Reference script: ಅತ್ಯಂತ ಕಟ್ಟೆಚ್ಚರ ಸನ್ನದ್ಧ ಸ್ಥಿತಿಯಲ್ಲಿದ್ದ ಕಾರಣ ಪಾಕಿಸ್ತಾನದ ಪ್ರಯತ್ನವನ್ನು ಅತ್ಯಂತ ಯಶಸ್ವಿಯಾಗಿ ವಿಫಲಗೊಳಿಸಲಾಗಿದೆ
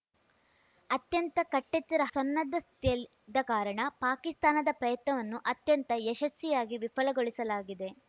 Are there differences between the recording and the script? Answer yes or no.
no